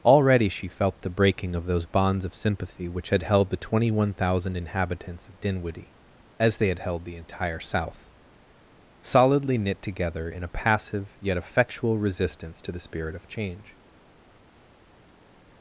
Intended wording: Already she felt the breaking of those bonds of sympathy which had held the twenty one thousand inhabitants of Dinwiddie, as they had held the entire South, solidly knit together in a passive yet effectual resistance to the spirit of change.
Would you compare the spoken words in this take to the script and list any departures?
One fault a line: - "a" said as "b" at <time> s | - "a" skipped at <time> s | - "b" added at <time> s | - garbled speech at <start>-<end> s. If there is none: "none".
none